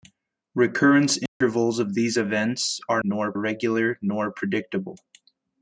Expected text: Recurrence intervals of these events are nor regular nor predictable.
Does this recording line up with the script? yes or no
yes